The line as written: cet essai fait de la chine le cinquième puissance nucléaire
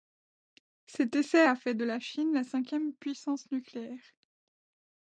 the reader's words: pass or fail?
fail